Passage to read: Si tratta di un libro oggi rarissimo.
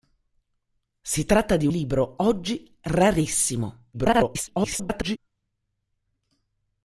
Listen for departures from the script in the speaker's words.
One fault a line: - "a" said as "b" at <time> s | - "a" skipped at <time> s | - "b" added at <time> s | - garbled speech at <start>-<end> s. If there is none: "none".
- "un" skipped at 1.7 s
- garbled speech at 3.9-5.2 s